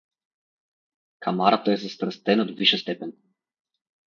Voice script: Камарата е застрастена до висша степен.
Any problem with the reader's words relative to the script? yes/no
no